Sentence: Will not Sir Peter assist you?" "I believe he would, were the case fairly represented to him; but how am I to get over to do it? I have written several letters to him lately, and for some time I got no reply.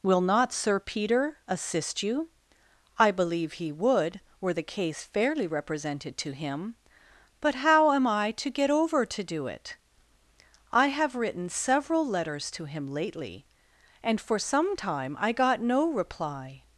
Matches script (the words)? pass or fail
pass